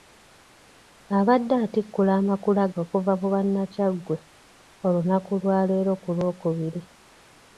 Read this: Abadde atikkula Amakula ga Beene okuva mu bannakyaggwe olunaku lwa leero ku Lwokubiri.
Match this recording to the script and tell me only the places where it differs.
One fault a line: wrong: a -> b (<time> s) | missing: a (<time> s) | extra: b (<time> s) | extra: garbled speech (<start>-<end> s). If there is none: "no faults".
missing: ga Beene (2.6 s)